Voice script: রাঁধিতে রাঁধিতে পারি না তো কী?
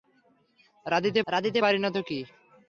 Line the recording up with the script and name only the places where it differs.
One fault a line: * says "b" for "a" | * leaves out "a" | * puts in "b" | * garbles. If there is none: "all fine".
all fine